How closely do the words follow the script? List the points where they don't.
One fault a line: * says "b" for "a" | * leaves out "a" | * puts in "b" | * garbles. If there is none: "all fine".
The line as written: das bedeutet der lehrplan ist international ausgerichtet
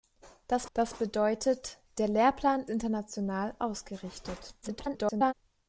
* puts in "das"
* leaves out "ist"
* garbles